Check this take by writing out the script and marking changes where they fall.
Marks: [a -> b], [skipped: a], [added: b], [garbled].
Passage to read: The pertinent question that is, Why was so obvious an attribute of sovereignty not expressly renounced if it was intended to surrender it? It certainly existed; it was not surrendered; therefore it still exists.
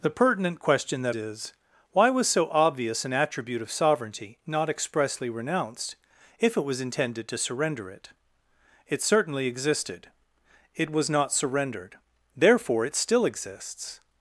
The pertinent question that is, Why was so obvious an attribute of sovereignty not expressly renounced if it was intended to surrender it? It certainly existed; it was not surrendered; therefore it still exists.